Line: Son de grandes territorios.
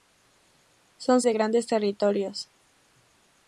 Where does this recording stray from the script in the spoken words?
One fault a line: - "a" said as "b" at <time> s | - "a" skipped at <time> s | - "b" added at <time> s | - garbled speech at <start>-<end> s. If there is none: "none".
none